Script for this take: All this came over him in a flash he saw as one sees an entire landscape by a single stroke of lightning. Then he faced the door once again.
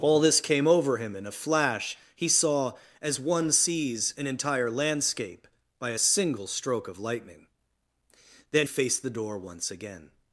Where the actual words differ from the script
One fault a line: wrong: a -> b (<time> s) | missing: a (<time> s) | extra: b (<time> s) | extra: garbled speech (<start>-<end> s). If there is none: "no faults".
missing: he (8.7 s)